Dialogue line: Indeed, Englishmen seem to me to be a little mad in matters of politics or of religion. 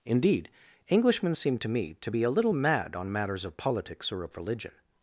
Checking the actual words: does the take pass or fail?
fail